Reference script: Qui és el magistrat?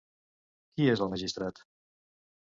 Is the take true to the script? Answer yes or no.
yes